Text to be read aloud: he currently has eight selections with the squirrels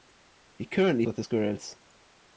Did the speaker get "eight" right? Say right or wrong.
wrong